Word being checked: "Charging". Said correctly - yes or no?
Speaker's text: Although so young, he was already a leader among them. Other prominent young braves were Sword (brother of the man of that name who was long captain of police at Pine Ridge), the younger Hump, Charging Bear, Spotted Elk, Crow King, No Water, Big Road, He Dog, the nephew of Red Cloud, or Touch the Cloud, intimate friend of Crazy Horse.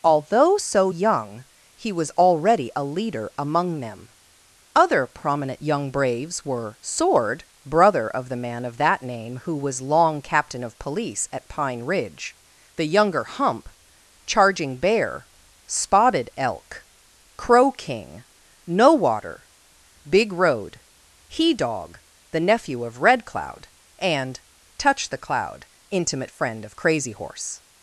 yes